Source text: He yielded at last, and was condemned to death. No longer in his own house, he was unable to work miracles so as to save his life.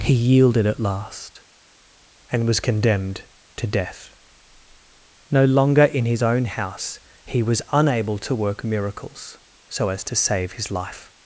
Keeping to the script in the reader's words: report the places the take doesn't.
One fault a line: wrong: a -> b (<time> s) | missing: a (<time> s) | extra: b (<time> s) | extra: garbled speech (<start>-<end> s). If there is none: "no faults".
no faults